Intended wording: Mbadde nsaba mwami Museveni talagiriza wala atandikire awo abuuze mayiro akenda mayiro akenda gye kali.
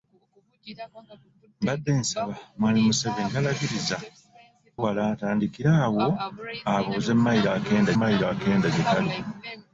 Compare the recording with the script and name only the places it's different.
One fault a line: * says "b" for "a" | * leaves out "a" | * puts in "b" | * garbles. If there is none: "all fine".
all fine